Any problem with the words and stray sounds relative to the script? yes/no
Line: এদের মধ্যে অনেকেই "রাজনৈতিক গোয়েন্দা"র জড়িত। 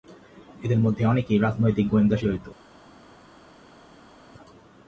no